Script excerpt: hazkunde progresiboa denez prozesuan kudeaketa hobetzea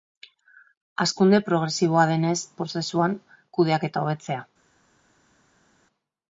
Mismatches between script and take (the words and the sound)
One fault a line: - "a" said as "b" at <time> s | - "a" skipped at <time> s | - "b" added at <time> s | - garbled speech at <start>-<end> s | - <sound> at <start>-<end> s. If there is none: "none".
none